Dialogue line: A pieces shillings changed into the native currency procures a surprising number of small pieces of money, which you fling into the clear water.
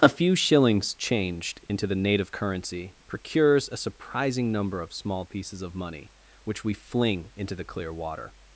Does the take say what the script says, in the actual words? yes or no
no